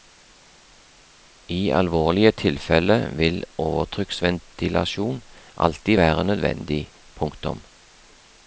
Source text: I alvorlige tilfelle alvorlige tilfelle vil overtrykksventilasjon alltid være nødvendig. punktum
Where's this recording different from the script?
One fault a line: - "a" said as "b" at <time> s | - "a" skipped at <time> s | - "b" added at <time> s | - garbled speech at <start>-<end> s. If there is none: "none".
- "alvorlige tilfelle" skipped at 3.0 s